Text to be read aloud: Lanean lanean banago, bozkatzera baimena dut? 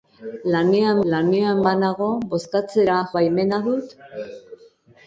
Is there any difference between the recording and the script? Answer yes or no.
no